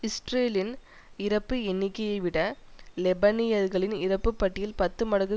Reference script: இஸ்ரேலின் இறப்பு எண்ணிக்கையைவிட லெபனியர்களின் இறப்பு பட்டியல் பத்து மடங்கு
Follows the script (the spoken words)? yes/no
yes